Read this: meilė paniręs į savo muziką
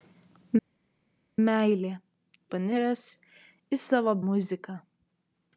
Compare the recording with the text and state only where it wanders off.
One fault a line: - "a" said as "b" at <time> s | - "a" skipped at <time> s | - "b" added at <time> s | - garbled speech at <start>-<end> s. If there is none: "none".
none